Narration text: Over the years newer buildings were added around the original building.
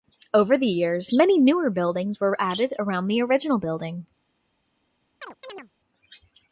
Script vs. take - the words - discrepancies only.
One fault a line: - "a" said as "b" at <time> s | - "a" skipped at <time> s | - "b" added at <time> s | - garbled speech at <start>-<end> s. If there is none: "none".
- "many" added at 1.1 s